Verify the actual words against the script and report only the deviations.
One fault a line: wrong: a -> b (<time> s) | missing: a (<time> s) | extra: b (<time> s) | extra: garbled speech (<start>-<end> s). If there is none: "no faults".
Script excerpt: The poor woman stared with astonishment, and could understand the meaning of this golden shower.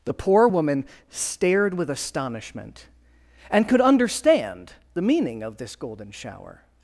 no faults